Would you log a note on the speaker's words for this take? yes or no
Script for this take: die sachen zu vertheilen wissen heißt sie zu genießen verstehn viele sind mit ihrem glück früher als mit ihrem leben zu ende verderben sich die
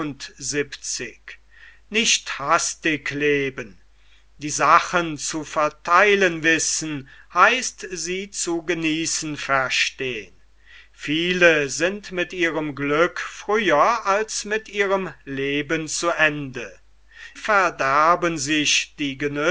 no